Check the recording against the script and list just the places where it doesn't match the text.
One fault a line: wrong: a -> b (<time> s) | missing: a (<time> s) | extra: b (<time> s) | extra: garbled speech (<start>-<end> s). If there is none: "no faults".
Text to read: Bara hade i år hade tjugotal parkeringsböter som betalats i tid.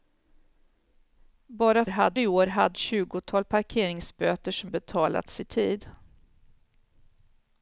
no faults